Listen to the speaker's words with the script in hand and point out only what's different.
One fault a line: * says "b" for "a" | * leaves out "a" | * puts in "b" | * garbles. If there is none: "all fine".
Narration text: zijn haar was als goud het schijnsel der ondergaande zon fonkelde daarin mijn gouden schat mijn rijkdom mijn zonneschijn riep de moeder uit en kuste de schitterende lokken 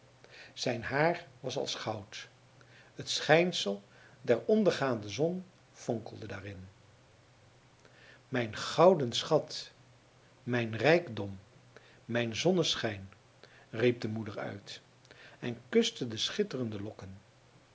all fine